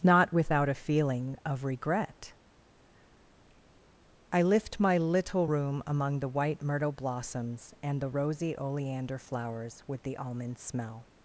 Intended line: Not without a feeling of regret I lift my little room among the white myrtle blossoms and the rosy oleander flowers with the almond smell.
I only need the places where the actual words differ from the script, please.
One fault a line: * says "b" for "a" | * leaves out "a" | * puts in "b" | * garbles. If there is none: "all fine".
all fine